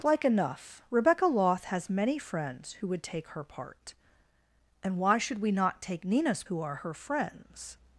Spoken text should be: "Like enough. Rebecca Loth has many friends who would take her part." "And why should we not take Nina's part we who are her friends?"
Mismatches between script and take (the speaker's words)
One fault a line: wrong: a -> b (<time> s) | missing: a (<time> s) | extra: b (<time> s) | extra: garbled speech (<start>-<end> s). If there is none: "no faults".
missing: part we (6.4 s)